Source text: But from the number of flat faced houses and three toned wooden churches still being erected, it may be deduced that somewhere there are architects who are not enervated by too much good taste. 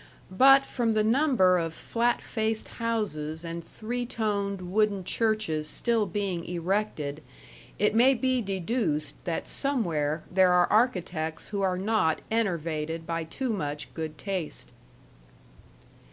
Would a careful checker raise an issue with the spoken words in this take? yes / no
no